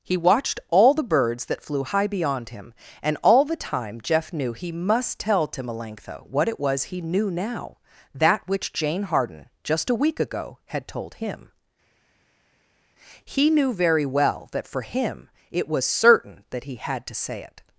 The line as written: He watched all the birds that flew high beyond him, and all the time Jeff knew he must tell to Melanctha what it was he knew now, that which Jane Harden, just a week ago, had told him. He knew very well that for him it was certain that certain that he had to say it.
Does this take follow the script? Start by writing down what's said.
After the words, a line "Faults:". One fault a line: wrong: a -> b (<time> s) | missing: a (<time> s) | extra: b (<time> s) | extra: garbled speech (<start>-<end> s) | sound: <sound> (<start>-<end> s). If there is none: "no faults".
He watched all the birds that flew high beyond him, and all the time Jeff knew he must tell to Melanctha what it was he knew now, that which Jane Harden, just a week ago, had told him. He knew very well that for him it was certain that he had to say it.
Faults:
missing: certain that (16.6 s)